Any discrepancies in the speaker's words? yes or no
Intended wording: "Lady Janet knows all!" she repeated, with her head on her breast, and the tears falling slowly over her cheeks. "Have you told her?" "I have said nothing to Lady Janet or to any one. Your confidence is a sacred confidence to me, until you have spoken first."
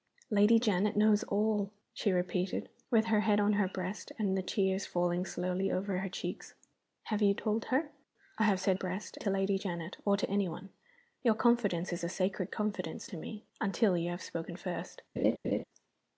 yes